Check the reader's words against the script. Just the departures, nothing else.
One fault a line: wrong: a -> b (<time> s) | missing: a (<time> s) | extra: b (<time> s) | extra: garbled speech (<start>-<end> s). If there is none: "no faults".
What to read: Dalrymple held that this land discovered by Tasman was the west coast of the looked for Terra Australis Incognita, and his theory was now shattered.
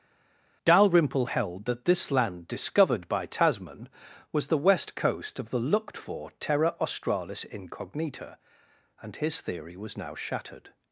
no faults